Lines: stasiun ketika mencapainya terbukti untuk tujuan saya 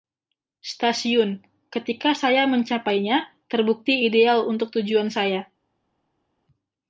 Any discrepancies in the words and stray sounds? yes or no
yes